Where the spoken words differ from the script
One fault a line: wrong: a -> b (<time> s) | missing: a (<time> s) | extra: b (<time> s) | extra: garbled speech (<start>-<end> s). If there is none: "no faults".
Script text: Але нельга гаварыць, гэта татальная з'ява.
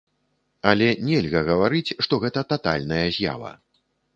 extra: што (2.1 s)